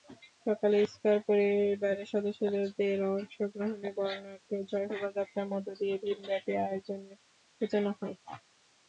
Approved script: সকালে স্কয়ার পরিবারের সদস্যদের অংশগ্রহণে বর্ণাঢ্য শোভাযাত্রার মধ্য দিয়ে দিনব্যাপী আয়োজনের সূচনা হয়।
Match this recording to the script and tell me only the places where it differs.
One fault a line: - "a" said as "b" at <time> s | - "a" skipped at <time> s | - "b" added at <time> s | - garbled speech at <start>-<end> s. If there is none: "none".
none